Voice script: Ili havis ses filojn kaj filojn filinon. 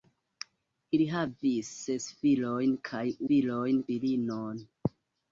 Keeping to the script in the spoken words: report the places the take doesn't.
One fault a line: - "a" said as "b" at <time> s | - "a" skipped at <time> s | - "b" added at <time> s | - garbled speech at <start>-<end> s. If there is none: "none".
none